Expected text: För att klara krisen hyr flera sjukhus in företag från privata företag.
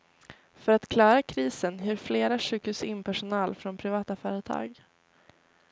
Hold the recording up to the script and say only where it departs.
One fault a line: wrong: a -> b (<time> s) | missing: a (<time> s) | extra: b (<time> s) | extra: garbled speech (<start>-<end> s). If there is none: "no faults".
wrong: företag -> personal (3.0 s)